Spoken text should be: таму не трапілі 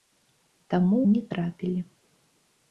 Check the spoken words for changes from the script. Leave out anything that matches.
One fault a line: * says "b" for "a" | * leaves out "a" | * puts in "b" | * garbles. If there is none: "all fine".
all fine